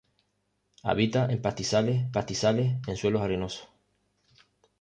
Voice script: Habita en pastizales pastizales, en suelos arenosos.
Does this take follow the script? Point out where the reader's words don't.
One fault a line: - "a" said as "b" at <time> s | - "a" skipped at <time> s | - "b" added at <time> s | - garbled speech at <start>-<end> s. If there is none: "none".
none